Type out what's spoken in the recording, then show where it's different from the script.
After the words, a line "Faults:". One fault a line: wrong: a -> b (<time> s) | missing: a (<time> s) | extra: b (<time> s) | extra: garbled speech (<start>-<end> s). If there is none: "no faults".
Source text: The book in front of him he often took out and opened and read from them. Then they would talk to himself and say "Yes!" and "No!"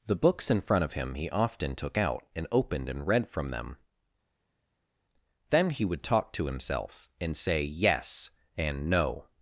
The books in front of him he often took out and opened and read from them. Then he would talk to himself and say "Yes!" and "No!"
Faults:
wrong: book -> books (0.1 s)
wrong: they -> he (5.7 s)